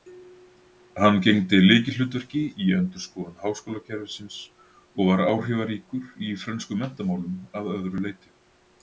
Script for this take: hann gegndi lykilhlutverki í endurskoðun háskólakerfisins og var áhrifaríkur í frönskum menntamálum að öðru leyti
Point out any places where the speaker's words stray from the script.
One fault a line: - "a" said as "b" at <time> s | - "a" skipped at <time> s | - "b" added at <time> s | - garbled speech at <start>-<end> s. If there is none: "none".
none